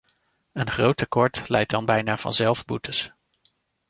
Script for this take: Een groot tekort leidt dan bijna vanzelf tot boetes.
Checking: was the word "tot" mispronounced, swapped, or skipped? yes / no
yes